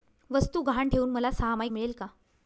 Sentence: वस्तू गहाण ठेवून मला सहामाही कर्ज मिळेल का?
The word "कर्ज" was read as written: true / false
false